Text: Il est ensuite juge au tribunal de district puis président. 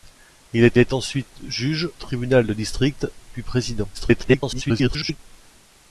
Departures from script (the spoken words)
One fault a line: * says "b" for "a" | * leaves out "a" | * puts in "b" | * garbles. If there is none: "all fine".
* puts in "est"
* leaves out "au"
* garbles